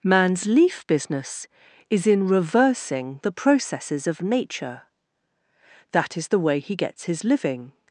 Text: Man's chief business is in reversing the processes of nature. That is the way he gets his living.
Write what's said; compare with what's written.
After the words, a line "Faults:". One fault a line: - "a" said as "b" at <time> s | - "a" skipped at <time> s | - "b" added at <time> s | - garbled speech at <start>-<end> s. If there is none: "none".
Man's leaf business is in reversing the processes of nature. That is the way he gets his living.
Faults:
- "chief" said as "leaf" at 0.5 s